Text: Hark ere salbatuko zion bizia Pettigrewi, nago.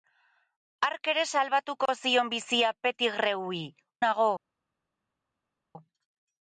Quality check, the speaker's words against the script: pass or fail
pass